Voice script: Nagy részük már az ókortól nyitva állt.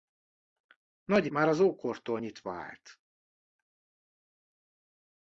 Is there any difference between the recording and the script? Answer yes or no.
yes